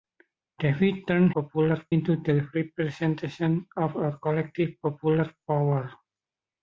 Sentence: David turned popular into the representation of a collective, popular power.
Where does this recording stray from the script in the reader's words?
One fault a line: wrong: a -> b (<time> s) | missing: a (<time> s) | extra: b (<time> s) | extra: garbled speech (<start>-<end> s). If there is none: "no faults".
no faults